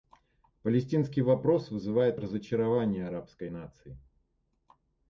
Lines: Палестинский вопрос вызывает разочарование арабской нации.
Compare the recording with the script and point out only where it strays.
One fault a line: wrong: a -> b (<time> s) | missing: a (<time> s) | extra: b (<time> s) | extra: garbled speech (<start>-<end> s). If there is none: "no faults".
no faults